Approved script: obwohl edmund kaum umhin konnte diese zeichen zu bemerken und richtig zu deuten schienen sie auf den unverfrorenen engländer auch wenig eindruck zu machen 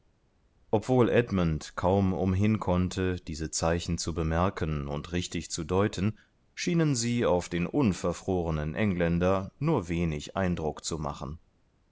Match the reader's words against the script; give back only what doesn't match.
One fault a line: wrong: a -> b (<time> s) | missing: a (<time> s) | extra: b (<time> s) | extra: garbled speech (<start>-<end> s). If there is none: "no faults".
wrong: auch -> nur (9.6 s)